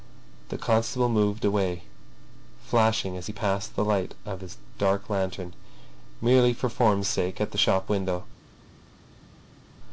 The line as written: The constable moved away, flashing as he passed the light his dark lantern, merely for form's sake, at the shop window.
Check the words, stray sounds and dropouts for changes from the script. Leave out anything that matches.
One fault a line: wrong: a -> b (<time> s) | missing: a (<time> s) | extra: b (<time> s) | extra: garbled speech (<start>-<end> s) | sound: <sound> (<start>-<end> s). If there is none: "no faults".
extra: of (4.2 s)